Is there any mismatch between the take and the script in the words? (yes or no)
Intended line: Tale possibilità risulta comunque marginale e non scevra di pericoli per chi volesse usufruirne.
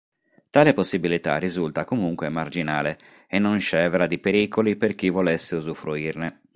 no